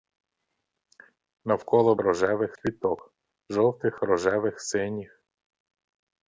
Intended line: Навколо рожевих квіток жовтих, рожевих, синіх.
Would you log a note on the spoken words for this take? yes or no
no